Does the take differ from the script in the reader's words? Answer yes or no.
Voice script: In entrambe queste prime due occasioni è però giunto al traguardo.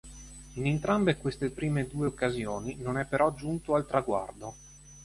yes